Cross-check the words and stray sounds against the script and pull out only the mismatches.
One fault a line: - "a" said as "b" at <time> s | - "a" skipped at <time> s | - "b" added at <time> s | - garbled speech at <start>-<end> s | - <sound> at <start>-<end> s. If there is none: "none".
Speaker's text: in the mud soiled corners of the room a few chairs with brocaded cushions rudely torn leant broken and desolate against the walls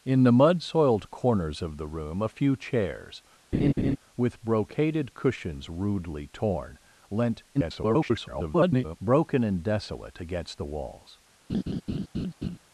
- laugh at 3.5-4.0 s
- garbled speech at 7.5-9.0 s
- laugh at 11.5-12.6 s